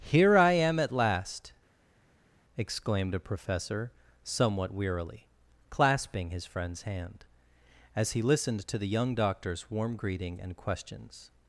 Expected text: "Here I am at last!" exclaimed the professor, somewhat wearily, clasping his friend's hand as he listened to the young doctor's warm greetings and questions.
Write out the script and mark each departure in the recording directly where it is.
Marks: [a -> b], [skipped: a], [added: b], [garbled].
"Here I am at last!" exclaimed [the -> a] professor, somewhat wearily, clasping his friend's hand as he listened to the young doctor's warm [greetings -> greeting] and questions.